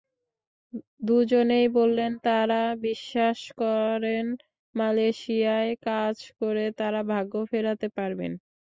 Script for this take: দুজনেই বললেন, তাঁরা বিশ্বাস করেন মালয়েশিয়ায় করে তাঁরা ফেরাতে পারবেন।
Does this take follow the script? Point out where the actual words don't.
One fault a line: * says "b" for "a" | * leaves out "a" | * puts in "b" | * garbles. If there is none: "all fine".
* puts in "কাজ"
* puts in "ভাগ্য"